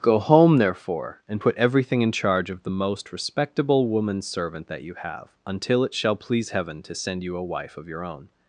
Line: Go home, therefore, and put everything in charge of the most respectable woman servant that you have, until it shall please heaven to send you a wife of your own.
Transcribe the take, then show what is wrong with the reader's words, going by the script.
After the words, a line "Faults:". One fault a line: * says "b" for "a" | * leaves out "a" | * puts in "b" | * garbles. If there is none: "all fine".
Go home, therefore, and put everything in charge of the most respectable woman servant that you have, until it shall please heaven to send you a wife of your own.
Faults:
all fine